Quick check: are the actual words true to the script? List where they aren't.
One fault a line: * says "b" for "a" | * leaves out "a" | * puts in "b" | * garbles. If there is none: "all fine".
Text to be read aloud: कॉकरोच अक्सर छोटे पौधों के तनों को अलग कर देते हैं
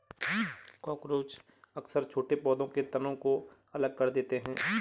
all fine